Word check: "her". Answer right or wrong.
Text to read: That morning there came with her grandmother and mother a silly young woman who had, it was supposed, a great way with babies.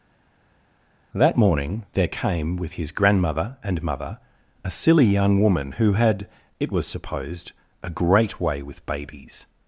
wrong